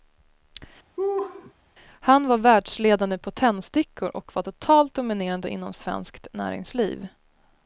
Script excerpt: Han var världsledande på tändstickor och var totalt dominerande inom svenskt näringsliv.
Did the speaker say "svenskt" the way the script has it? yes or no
yes